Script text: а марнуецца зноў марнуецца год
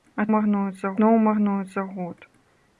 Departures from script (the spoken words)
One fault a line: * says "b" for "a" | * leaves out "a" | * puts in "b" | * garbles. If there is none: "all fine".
all fine